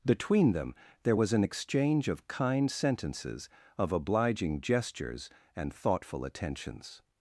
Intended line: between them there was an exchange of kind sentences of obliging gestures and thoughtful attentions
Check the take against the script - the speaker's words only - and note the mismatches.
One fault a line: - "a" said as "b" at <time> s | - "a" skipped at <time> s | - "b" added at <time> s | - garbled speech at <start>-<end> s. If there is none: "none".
none